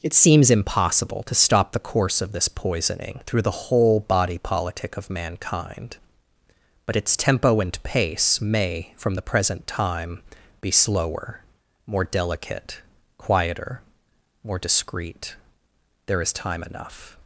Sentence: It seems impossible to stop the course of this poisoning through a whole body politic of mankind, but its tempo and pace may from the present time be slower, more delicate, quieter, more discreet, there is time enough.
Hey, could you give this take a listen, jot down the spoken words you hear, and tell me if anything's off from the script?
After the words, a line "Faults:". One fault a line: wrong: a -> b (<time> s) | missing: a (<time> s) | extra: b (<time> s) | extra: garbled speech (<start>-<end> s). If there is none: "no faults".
It seems impossible to stop the course of this poisoning through the whole body politic of mankind, but its tempo and pace may from the present time be slower, more delicate, quieter, more discreet, there is time enough.
Faults:
wrong: a -> the (3.4 s)